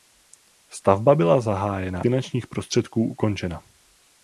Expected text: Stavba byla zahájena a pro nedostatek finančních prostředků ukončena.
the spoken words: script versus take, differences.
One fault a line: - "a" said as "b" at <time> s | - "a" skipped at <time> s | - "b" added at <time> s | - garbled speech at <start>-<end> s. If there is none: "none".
- "a pro nedostatek" skipped at 2.0 s